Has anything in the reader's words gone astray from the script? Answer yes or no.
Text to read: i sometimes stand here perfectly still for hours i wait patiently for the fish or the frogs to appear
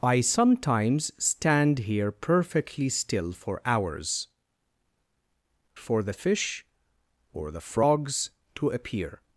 yes